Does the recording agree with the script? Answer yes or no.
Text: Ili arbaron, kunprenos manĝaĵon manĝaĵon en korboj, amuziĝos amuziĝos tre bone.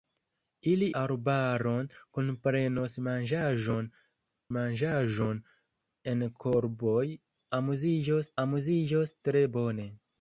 yes